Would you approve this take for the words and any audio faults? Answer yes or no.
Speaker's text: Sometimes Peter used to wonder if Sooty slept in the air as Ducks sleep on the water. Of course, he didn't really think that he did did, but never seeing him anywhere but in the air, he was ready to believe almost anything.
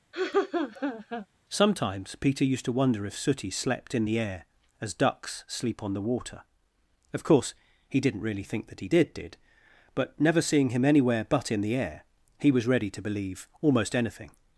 no